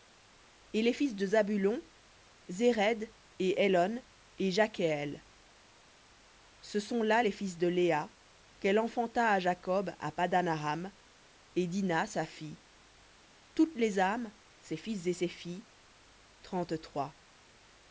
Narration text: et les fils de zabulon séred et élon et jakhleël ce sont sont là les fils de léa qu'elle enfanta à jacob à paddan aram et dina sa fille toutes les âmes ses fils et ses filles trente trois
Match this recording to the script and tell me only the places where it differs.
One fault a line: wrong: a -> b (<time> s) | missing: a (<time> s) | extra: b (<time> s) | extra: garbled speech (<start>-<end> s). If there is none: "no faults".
missing: sont (7.0 s)